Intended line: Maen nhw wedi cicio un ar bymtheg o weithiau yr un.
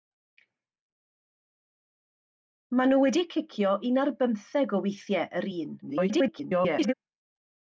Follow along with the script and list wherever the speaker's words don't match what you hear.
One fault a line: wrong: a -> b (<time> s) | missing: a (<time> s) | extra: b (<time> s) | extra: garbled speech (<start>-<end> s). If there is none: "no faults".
extra: garbled speech (5.8-6.9 s)